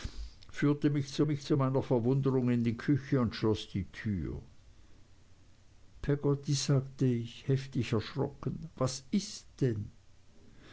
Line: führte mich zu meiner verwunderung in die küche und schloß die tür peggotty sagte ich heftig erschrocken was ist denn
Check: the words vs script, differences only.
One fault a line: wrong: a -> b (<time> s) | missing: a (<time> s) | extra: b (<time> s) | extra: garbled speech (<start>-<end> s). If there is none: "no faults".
extra: mich zu (1.2 s)